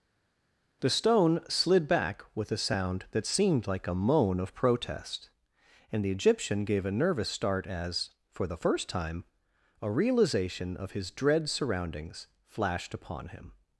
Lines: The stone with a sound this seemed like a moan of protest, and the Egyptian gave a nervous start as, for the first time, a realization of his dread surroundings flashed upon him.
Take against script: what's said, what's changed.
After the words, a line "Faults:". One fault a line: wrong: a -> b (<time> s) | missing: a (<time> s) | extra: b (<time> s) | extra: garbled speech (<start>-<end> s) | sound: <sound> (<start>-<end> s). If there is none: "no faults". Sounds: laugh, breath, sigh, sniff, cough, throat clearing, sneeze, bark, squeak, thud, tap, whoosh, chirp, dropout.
The stone slid back with a sound that seemed like a moan of protest, and the Egyptian gave a nervous start as, for the first time, a realization of his dread surroundings flashed upon him.
Faults:
extra: slid back (1.5 s)
wrong: this -> that (3.1 s)